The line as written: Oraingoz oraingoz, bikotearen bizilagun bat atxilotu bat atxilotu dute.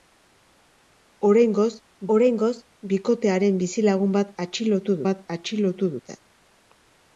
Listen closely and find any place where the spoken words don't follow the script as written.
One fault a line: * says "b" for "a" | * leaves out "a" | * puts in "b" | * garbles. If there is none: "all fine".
all fine